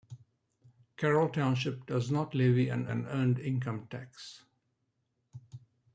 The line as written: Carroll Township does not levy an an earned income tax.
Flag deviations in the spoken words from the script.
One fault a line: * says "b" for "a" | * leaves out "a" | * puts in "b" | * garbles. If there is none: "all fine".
all fine